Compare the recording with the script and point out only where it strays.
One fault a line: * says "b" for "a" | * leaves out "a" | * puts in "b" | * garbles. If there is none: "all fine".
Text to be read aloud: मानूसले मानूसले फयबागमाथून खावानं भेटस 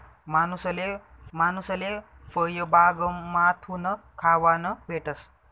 all fine